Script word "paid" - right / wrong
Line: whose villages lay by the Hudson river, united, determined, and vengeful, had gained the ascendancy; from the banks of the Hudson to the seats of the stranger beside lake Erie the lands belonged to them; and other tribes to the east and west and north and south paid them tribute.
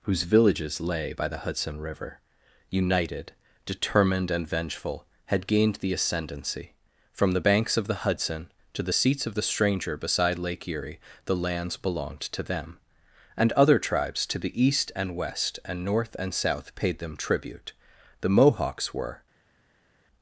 right